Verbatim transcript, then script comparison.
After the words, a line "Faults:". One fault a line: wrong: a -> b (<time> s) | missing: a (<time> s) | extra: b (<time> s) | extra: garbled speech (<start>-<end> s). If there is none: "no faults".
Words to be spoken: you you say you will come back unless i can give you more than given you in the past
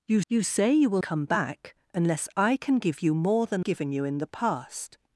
you you say you will come back unless i can give you more than given you in the past
Faults:
no faults